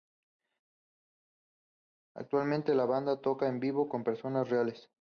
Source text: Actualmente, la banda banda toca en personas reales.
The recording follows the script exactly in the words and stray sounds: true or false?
false